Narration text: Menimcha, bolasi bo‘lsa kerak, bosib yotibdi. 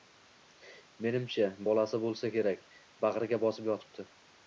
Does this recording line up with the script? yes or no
no